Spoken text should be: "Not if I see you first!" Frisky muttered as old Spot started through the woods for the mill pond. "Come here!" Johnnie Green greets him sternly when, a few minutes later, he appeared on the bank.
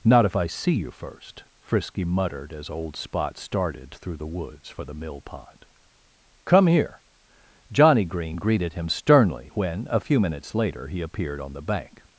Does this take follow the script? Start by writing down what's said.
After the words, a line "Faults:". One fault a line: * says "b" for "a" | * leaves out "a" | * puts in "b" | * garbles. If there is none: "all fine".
"Not if I see you first!" Frisky muttered as old Spot started through the woods for the mill pond. "Come here!" Johnnie Green greeted him sternly when, a few minutes later, he appeared on the bank.
Faults:
* says "greeted" for "greets"